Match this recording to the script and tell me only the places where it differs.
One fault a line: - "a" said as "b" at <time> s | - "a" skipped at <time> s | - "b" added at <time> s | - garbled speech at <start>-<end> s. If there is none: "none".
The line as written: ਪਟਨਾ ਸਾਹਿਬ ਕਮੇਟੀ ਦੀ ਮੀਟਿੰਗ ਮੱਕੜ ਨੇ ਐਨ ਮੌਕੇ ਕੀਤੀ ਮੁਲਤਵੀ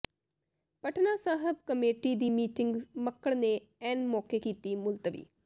none